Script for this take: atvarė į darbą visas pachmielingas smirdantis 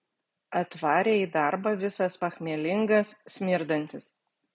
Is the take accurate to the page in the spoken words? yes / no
yes